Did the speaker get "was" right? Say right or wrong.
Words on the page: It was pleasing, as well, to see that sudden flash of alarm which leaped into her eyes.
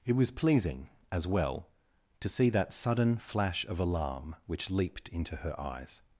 right